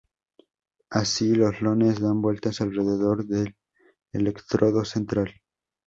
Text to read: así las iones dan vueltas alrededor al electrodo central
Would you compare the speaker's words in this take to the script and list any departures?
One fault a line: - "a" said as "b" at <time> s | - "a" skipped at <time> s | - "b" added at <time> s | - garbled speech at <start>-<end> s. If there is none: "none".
- "las" said as "los" at 1.4 s
- "al" said as "del" at 3.2 s